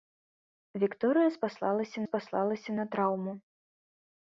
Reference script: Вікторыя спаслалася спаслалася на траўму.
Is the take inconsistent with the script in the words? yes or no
no